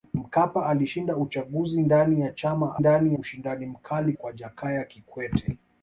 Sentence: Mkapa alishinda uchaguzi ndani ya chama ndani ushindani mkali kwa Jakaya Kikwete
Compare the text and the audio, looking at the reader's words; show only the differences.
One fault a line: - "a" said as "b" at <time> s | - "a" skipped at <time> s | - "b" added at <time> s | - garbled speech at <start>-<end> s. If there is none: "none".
none